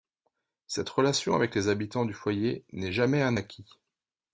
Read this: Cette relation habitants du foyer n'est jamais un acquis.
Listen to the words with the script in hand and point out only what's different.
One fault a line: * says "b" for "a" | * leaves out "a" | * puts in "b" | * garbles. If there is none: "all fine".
* puts in "avec les"